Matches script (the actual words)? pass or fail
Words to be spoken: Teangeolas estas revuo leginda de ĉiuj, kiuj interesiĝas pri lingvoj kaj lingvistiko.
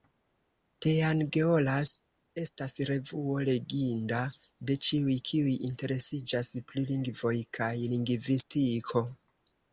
pass